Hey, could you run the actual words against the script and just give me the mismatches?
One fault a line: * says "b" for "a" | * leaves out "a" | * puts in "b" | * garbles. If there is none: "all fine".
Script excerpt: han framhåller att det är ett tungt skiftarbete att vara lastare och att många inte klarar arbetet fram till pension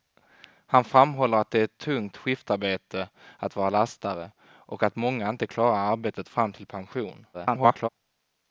* garbles